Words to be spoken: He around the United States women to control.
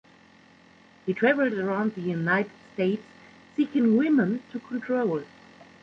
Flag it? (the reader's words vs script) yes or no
yes